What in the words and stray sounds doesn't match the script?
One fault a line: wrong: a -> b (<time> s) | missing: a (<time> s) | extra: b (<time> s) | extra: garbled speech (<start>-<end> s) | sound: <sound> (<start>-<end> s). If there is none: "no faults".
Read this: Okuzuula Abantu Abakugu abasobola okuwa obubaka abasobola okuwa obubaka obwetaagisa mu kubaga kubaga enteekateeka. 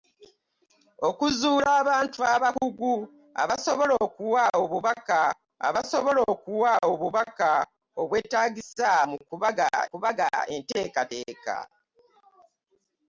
no faults